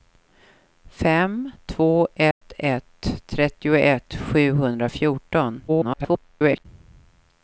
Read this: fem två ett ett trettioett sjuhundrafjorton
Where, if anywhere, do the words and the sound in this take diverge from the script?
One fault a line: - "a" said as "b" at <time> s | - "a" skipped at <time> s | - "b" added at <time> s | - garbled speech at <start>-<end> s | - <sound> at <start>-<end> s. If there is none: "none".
- dropout at 2.3-2.4 s
- garbled speech at 5.7-6.7 s